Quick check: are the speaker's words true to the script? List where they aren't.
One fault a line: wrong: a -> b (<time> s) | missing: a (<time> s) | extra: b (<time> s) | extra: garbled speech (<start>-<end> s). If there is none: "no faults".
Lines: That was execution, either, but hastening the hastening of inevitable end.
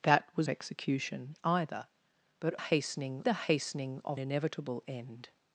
no faults